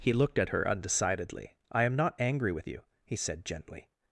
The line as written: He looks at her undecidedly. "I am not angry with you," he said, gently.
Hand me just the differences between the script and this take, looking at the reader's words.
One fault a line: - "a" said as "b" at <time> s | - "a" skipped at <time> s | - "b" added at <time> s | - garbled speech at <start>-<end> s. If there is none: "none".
- "looks" said as "looked" at 0.1 s